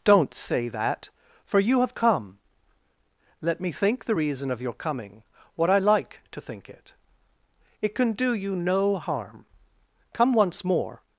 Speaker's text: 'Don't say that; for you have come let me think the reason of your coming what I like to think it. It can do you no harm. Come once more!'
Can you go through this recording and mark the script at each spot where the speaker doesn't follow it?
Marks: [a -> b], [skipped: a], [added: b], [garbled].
'Don't say that; for you have come let me think the reason of your coming what I like to think it. It can do you no harm. Come once more!'